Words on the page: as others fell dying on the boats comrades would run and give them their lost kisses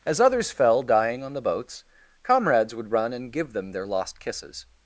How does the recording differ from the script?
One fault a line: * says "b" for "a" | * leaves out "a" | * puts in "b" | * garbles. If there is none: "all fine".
all fine